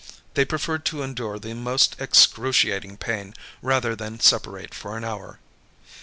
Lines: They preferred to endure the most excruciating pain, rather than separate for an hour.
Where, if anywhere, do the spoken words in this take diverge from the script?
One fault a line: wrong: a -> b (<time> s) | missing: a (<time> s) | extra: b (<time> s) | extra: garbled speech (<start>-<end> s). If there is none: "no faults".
no faults